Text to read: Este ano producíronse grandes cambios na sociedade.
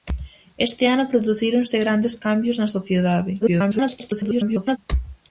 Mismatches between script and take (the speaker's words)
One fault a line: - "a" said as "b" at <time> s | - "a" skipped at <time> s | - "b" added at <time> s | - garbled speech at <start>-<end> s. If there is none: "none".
- garbled speech at 3.4-4.8 s